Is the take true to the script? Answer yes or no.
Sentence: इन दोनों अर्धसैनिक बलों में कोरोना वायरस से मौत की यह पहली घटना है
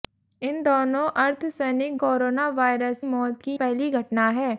no